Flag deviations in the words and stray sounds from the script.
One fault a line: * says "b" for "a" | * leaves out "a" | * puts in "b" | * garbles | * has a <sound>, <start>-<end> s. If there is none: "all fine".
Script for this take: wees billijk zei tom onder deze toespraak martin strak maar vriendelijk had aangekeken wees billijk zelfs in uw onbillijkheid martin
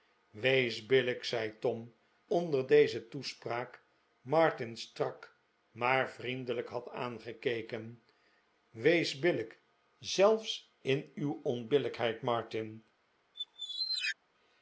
* has a squeak, 13.3-14.2 s